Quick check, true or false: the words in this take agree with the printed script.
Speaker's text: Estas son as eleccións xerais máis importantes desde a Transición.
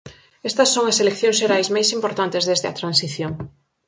true